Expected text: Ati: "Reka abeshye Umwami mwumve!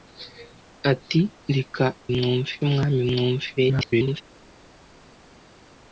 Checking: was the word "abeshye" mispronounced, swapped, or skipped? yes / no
yes